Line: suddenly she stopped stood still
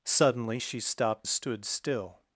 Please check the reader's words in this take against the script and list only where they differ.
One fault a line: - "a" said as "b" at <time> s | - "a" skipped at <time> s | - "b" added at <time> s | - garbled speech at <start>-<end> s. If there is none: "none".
none